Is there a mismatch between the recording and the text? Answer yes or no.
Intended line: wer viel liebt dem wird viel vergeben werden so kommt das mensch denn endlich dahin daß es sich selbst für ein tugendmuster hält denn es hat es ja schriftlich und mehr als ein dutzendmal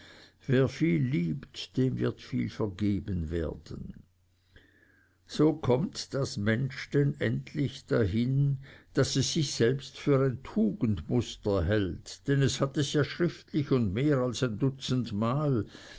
no